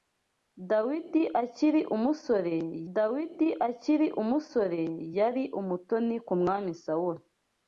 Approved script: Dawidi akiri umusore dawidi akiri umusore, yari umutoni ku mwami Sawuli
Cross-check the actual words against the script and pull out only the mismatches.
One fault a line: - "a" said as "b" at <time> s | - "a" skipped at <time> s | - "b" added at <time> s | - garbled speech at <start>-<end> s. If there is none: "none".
none